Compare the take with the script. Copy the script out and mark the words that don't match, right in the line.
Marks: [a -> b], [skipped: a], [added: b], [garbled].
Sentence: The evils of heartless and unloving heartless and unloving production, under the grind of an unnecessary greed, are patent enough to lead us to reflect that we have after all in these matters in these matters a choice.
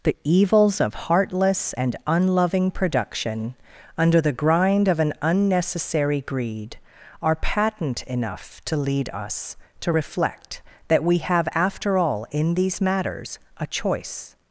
The evils of heartless and unloving [skipped: heartless and unloving] production, under the grind of an unnecessary greed, are patent enough to lead us to reflect that we have after all in these matters [skipped: in these matters] a choice.